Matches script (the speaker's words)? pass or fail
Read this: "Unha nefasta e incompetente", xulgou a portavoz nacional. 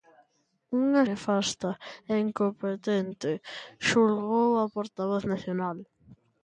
pass